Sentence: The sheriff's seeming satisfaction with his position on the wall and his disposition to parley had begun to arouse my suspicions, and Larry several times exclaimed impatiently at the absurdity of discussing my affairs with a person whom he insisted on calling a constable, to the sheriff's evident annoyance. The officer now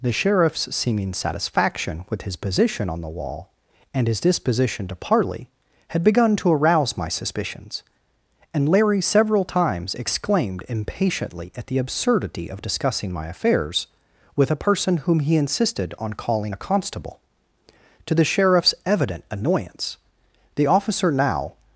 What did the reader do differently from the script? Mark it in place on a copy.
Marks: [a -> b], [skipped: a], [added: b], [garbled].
The sheriff's seeming satisfaction with his position on the wall and his disposition to parley had begun to arouse my suspicions, and Larry several times exclaimed impatiently at the absurdity of discussing my affairs with a person whom he insisted on calling a constable, to the sheriff's evident annoyance. The officer now